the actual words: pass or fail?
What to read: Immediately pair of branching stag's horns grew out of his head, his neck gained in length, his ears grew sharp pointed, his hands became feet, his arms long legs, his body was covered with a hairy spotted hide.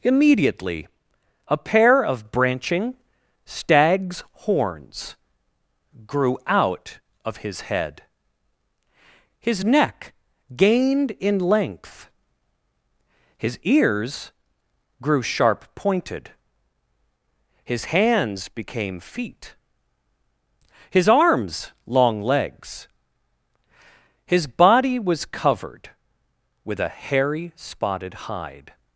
fail